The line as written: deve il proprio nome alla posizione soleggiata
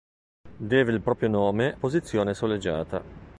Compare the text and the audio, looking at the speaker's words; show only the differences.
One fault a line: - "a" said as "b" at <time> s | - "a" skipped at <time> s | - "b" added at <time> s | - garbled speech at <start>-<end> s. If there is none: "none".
- "alla" skipped at 1.8 s